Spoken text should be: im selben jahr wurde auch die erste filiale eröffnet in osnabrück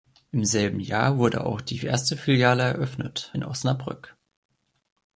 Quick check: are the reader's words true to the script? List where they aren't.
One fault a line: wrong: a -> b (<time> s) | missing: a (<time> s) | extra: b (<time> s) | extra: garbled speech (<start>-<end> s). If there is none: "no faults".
no faults